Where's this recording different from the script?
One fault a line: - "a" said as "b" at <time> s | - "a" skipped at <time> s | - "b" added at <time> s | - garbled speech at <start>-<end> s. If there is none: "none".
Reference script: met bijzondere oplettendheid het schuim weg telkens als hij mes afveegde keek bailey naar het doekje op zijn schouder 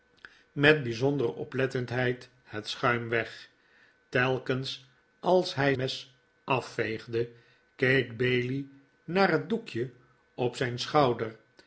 none